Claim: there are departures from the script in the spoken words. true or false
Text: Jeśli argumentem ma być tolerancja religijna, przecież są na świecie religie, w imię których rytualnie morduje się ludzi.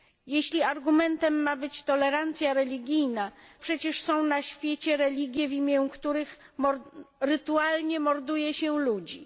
false